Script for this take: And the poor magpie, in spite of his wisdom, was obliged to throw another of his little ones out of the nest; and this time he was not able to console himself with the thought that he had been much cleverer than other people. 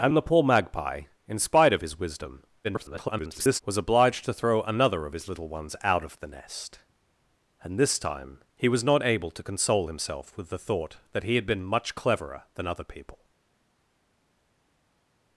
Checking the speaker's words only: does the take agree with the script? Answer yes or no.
no